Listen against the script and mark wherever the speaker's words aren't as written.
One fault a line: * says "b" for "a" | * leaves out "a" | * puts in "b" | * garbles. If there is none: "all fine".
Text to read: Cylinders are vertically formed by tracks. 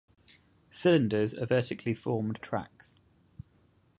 * leaves out "by"